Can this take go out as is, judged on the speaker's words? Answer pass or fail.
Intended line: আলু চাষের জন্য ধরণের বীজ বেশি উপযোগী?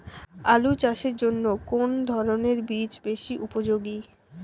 fail